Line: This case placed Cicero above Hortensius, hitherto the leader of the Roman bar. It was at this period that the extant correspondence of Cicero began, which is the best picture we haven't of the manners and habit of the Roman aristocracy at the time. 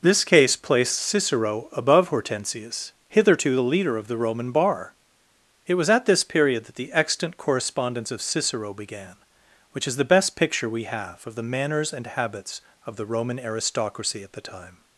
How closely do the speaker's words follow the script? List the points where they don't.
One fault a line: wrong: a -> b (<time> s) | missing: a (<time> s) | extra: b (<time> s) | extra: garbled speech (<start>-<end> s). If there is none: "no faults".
wrong: haven't -> have (10.8 s)
wrong: habit -> habits (12.1 s)